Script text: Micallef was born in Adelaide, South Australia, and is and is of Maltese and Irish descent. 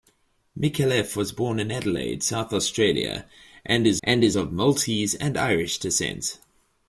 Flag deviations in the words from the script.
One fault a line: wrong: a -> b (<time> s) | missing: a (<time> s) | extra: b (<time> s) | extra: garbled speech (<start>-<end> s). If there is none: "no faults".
no faults